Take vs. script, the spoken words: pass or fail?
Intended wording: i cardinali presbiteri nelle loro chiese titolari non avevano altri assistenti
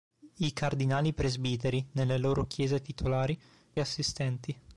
fail